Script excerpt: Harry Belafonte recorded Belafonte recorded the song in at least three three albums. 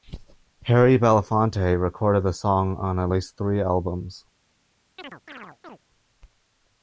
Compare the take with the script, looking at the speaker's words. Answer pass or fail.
fail